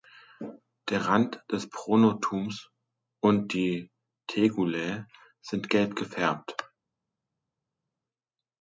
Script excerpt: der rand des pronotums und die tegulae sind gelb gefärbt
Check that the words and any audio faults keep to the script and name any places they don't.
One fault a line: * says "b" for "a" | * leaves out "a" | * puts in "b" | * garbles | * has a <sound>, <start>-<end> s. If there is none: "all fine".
all fine